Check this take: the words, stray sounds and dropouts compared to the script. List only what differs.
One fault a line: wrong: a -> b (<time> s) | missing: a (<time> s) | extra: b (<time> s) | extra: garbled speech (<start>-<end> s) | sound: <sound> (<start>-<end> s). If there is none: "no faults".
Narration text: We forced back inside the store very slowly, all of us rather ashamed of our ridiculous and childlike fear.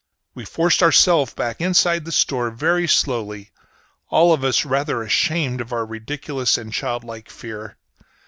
extra: ourselves (0.8 s)